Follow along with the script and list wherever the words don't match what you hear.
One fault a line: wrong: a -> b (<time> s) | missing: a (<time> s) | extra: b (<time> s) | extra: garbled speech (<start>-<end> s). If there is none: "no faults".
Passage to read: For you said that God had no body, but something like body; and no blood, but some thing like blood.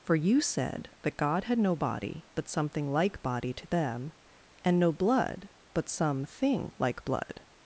extra: to them (3.5 s)